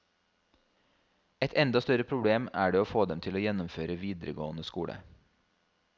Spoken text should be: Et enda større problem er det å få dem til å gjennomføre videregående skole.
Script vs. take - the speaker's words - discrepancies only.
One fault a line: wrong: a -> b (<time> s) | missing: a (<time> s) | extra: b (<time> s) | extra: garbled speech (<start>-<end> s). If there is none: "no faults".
no faults